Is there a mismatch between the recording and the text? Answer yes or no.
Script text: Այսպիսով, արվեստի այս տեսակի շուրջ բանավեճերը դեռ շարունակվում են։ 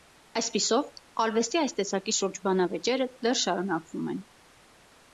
no